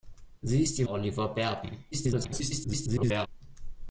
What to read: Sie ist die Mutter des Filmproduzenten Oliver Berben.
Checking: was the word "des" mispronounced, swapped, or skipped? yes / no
yes